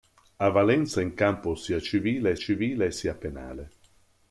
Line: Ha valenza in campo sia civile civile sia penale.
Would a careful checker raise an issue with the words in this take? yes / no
no